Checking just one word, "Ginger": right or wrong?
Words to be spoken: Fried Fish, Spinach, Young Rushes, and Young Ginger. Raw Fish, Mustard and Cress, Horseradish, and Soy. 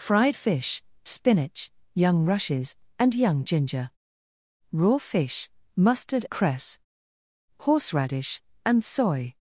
right